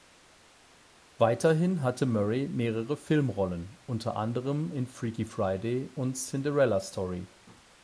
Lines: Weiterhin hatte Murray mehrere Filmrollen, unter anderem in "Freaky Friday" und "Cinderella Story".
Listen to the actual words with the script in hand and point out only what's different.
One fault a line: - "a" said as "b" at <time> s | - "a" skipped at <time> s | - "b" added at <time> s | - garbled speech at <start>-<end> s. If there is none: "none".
none